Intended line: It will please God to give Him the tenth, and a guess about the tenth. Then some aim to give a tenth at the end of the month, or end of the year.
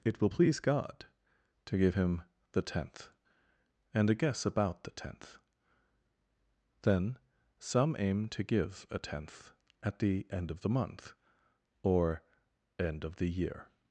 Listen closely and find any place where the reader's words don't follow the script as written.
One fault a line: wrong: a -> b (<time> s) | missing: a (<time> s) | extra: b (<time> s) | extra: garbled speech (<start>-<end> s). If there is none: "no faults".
no faults